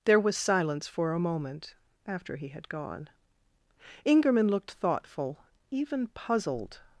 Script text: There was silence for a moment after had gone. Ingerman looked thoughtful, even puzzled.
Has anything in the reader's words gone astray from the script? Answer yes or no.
yes